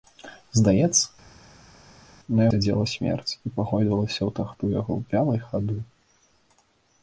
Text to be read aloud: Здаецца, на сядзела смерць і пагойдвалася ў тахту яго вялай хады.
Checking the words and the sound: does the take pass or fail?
pass